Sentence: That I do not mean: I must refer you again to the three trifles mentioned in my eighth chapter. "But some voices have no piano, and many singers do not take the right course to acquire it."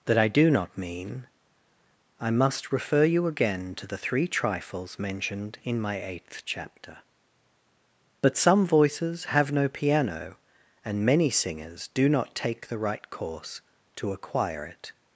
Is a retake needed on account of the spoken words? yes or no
no